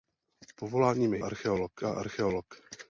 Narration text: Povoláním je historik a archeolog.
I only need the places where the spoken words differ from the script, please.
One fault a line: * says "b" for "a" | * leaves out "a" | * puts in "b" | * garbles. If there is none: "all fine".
* says "archeolog" for "historik"